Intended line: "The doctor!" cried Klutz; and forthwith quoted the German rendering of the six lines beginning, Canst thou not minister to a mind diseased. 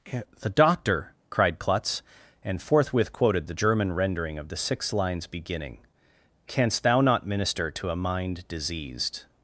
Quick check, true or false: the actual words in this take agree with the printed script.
true